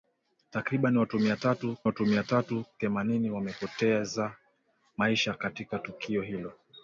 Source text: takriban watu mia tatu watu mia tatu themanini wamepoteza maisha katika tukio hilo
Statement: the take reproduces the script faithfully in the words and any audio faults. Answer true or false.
true